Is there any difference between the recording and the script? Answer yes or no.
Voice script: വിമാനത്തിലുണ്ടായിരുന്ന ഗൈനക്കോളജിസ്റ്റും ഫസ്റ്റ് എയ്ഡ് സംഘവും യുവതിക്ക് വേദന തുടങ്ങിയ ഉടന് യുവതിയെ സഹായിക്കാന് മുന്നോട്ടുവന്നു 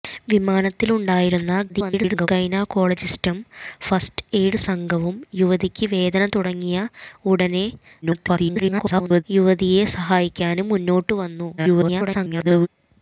yes